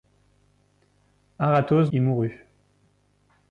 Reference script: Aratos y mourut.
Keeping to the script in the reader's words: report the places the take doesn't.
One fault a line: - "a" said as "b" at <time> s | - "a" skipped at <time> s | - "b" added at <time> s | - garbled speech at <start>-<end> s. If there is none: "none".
none